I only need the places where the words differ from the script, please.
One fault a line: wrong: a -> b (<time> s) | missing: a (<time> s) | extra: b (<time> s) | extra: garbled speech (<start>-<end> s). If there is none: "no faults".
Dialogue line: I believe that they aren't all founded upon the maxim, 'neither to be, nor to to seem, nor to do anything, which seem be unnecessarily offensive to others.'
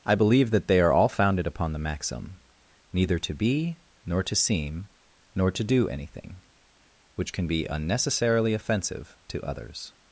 wrong: aren't -> are (0.8 s)
missing: to (4.4 s)
wrong: seem -> can (7.3 s)